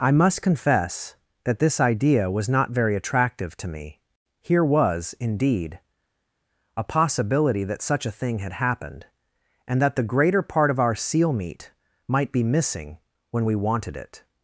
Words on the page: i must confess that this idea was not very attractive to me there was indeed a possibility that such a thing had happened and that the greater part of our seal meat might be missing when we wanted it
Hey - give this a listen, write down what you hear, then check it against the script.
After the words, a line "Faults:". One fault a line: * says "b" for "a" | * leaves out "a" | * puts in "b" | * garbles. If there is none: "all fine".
i must confess that this idea was not very attractive to me here was indeed a possibility that such a thing had happened and that the greater part of our seal meat might be missing when we wanted it
Faults:
* says "here" for "there"